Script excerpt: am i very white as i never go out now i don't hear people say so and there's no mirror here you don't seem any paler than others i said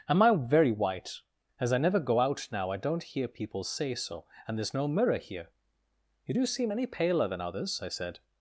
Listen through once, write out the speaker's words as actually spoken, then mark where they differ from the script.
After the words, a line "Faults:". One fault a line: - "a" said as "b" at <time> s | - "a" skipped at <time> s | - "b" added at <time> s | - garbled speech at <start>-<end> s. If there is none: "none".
am i very white as i never go out now i don't hear people say so and there's no mirror here you do seem any paler than others i said
Faults:
- "don't" said as "do" at 6.3 s